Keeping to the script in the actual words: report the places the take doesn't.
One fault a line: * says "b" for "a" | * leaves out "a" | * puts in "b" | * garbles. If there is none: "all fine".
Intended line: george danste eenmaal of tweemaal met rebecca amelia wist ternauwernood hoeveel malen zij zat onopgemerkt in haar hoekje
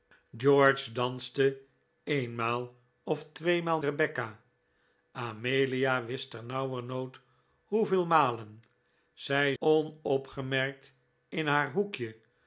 * leaves out "met"
* leaves out "zat"